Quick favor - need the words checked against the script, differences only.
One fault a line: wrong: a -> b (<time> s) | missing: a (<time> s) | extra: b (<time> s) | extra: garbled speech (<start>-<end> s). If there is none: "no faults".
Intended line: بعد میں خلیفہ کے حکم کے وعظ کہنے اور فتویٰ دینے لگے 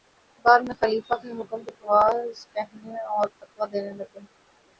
no faults